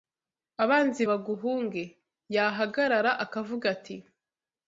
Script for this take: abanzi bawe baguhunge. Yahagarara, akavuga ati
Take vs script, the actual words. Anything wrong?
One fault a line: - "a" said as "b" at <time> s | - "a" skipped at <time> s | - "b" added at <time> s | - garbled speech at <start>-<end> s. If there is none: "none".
- "bawe" skipped at 1.0 s